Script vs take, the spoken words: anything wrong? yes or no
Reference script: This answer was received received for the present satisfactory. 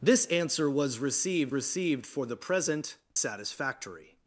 no